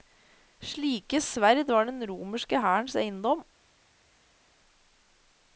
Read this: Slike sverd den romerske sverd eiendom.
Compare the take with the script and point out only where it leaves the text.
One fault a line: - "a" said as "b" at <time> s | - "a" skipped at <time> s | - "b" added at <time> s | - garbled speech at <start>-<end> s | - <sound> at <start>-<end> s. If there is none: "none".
- "var" added at 1.7 s
- "sverd" said as "hærens" at 2.6 s